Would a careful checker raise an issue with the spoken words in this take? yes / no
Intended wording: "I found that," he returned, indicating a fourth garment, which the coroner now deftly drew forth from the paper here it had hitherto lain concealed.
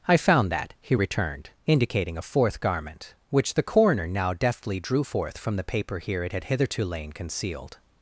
no